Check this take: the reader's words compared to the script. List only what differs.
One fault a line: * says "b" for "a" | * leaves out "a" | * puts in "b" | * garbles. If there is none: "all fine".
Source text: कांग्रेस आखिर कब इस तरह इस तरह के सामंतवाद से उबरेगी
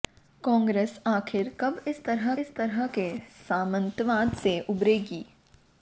all fine